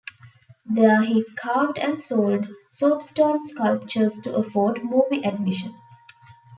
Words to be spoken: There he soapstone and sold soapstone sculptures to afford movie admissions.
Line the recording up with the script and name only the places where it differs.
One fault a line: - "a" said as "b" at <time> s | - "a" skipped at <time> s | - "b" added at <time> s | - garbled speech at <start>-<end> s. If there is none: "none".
- "soapstone" said as "carved" at 1.4 s